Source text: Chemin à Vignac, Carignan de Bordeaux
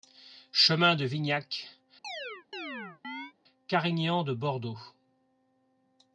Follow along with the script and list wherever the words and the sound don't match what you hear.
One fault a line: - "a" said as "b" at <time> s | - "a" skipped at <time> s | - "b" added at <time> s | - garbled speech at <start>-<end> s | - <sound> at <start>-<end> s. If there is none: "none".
- "à" said as "de" at 0.9 s
- chirp at 2.0-3.3 s